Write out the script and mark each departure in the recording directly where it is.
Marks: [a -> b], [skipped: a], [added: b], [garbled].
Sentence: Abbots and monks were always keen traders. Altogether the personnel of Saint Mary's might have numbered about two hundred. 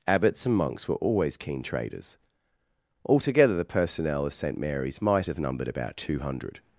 Abbots and monks were always keen traders. Altogether the personnel of Saint Mary's might have numbered about two hundred.